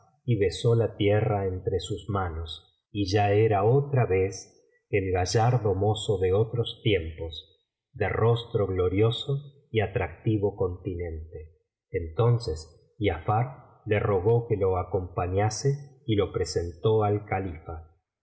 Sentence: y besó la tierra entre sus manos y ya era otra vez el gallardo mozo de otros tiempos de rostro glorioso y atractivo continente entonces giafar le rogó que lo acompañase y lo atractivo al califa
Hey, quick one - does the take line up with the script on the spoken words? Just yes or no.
no